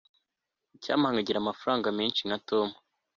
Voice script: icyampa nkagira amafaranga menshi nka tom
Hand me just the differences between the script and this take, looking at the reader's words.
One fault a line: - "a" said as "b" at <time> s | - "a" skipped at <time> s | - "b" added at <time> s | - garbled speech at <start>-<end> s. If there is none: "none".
none